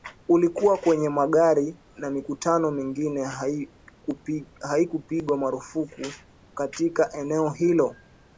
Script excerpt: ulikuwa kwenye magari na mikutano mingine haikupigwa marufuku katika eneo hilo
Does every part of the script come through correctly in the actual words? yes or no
yes